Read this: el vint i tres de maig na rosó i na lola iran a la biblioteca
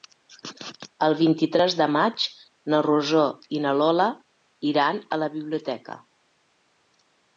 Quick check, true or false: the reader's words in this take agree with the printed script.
true